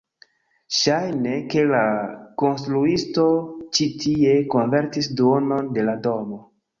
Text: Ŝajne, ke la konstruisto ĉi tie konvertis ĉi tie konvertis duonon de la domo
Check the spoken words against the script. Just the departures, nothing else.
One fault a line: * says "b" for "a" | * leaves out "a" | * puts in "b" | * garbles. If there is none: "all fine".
* leaves out "ĉi tie konvertis"